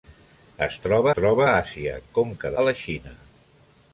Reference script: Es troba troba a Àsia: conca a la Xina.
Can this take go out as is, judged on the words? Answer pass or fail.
pass